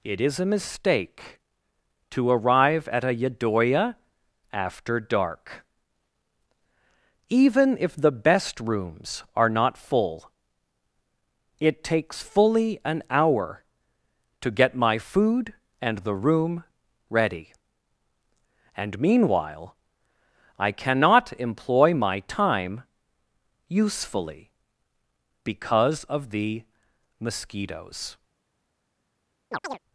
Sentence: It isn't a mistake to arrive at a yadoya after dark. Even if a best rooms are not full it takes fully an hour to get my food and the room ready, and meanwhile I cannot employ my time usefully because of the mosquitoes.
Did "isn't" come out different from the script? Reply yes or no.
yes